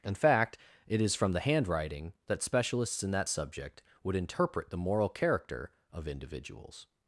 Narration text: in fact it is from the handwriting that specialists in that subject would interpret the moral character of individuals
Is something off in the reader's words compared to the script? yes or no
no